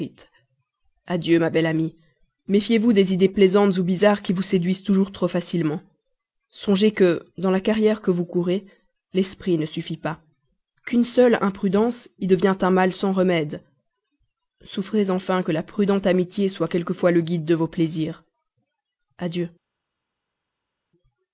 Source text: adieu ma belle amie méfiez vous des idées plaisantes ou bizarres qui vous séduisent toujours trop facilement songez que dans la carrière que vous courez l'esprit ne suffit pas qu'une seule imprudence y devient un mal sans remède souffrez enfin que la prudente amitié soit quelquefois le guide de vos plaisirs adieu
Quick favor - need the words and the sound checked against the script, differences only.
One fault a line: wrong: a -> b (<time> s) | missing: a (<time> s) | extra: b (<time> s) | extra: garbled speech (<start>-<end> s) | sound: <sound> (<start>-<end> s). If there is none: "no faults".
no faults